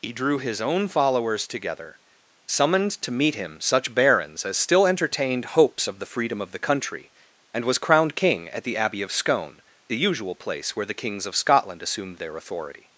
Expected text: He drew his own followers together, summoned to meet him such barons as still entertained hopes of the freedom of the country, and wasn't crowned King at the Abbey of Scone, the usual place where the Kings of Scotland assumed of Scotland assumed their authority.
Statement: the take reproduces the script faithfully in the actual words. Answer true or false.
false